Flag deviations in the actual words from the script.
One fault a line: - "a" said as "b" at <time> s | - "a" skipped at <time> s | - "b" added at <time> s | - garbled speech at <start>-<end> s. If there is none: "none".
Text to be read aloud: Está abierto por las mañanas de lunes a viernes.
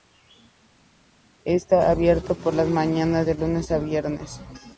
none